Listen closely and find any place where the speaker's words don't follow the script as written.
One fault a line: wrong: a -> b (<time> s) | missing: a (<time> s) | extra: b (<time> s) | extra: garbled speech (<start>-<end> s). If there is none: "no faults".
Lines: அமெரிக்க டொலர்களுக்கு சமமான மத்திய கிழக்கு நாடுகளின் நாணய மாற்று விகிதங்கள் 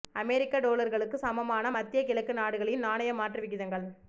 no faults